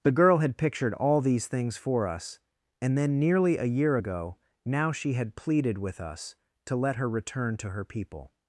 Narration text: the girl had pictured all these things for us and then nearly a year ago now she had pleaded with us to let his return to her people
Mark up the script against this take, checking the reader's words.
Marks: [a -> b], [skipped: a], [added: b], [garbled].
the girl had pictured all these things for us and then nearly a year ago now she had pleaded with us to let [his -> her] return to her people